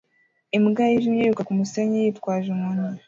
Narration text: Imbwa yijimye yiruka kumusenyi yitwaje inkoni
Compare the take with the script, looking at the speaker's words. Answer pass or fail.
pass